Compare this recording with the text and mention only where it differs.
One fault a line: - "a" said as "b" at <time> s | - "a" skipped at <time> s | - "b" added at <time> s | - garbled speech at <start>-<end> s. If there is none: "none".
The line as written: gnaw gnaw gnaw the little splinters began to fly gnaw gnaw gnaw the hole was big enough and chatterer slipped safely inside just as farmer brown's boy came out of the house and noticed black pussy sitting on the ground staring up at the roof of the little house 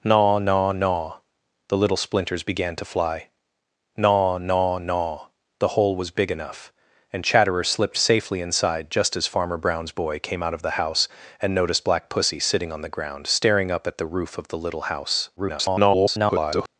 - garbled speech at 15.4-16.7 s